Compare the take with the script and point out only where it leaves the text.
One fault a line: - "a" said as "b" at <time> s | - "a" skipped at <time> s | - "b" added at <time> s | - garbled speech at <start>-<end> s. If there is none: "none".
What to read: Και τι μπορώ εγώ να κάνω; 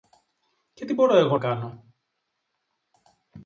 - "να" skipped at 1.4 s